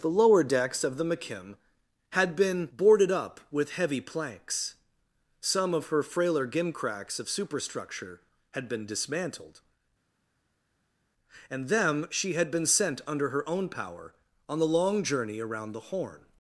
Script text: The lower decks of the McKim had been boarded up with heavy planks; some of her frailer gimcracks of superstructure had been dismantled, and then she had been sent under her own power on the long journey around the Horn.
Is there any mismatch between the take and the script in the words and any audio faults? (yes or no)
yes